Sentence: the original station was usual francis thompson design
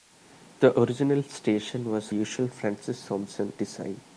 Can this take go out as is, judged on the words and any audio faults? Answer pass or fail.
pass